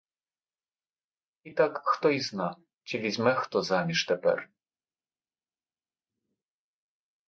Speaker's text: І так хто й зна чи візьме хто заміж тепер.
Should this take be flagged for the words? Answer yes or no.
no